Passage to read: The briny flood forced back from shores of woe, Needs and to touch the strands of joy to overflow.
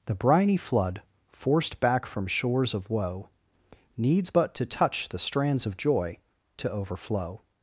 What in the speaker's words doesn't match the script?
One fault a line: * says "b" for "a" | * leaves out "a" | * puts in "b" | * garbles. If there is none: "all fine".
* says "but" for "and"